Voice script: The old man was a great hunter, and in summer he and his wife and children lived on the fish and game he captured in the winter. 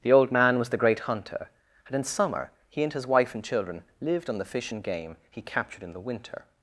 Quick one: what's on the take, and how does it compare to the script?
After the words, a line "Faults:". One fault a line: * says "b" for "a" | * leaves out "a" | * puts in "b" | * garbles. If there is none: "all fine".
The old man was the great hunter, and in summer he and his wife and children lived on the fish and game he captured in the winter.
Faults:
* says "the" for "a"